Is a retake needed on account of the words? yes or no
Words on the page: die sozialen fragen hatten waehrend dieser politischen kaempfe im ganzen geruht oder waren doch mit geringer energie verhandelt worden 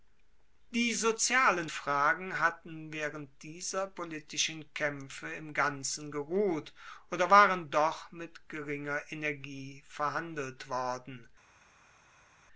no